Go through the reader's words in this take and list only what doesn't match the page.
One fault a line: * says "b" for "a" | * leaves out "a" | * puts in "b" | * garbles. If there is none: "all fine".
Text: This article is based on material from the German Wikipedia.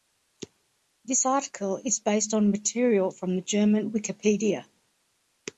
all fine